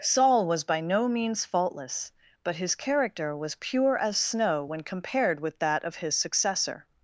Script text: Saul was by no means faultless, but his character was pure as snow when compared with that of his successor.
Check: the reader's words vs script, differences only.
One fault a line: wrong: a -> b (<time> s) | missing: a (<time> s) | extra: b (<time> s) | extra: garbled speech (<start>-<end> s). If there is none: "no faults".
no faults